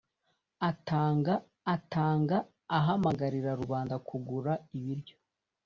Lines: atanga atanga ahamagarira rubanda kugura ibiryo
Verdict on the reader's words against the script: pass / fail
pass